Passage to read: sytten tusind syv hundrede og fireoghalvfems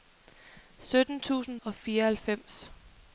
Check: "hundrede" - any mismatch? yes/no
yes